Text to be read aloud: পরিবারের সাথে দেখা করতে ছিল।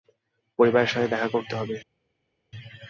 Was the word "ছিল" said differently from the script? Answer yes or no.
yes